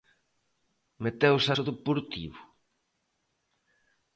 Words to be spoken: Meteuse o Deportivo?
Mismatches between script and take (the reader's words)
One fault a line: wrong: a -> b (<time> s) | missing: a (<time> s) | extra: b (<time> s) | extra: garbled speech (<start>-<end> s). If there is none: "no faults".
no faults